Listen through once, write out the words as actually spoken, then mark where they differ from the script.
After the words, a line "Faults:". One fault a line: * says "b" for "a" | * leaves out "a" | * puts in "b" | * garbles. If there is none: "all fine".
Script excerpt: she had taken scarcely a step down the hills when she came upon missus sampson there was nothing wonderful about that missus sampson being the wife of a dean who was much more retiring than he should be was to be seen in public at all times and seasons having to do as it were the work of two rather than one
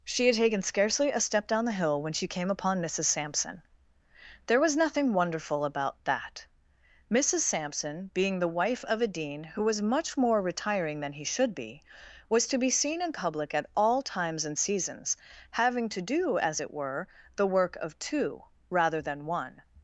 she had taken scarcely a step down the hill when she came upon missus sampson there was nothing wonderful about that missus sampson being the wife of a dean who was much more retiring than he should be was to be seen in public at all times and seasons having to do as it were the work of two rather than one
Faults:
* says "hill" for "hills"